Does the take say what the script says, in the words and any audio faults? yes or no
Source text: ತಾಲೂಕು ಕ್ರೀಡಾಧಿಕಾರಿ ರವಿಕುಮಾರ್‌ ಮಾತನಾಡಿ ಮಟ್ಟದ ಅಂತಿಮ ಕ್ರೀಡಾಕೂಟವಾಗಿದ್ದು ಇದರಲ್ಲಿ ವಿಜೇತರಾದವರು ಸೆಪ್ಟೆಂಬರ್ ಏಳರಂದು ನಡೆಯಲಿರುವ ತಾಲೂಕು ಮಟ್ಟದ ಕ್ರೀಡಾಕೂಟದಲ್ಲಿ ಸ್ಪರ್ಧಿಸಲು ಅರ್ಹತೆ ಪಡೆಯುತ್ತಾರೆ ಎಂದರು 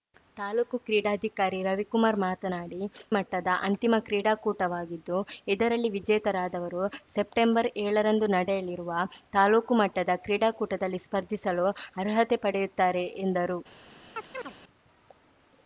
no